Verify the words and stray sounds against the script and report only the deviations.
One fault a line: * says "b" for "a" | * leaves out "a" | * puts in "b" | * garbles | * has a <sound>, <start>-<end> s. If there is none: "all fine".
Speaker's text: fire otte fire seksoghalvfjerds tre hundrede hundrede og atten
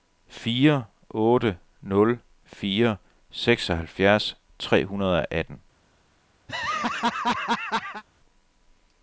* puts in "nul"
* leaves out "hundrede"
* has a laugh, 6.5-8.0 s